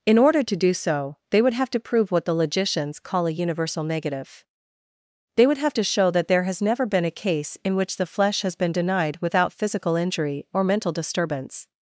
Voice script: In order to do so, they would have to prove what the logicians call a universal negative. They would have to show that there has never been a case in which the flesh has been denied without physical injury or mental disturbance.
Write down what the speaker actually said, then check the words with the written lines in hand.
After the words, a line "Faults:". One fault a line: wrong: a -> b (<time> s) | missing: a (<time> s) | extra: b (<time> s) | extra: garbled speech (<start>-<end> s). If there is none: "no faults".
In order to do so, they would have to prove what the logicians call a universal negative. They would have to show that there has never been a case in which the flesh has been denied without physical injury or mental disturbance.
Faults:
no faults